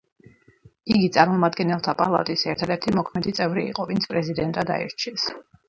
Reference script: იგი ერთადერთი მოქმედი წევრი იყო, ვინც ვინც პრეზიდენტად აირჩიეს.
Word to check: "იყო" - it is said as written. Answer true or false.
true